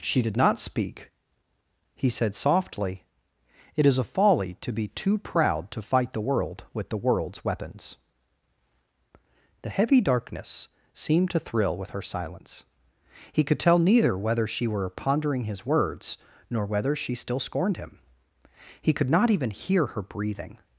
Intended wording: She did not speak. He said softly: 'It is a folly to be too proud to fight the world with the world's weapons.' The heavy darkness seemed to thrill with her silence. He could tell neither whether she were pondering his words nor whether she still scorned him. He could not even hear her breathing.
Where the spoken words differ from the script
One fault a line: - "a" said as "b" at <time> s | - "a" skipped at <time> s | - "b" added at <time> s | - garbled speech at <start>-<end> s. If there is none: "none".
none